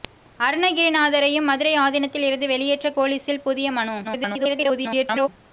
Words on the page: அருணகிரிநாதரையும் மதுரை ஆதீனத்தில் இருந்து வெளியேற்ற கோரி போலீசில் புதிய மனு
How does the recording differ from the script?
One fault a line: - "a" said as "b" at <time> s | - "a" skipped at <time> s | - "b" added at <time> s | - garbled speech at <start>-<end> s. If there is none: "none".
- "கோரி" skipped at 2.9 s
- garbled speech at 4.0-5.3 s